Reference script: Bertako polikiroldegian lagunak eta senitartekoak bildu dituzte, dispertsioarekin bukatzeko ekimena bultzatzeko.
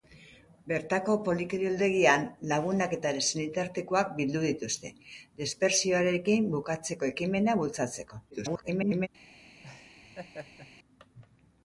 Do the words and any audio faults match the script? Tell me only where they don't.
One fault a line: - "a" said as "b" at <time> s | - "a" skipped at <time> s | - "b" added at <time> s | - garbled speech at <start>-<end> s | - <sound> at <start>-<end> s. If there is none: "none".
- garbled speech at 8.3-9.1 s
- laugh at 9.6-10.7 s